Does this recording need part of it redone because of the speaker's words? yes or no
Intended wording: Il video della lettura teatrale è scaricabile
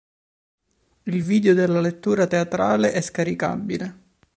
no